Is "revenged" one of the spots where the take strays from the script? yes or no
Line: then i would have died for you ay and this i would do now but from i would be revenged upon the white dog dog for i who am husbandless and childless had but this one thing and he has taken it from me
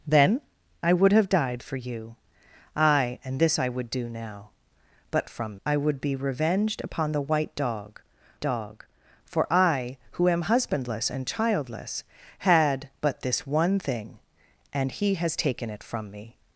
no